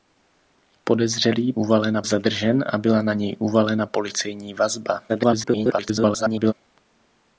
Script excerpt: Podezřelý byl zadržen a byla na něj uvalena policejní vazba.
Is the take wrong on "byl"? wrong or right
wrong